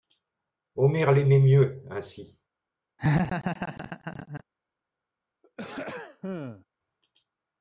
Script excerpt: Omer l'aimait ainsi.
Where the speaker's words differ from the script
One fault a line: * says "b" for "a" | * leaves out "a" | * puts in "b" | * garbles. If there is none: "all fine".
* puts in "mieux"